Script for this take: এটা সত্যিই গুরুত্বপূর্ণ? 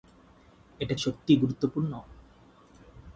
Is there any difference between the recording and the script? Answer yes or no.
no